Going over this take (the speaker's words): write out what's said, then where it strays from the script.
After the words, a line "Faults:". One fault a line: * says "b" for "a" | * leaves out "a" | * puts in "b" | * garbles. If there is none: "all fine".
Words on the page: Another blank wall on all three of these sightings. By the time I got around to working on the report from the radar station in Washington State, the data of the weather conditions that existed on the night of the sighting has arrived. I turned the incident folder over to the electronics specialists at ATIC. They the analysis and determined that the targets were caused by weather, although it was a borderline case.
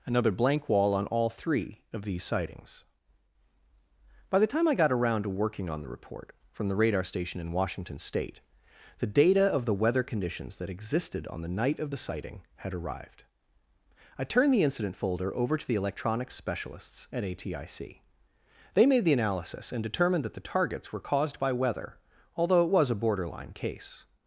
Another blank wall on all three of these sightings. By the time I got around to working on the report from the radar station in Washington State, the data of the weather conditions that existed on the night of the sighting had arrived. I turned the incident folder over to the electronics specialists at ATIC. They made the analysis and determined that the targets were caused by weather, although it was a borderline case.
Faults:
* says "had" for "has"
* puts in "made"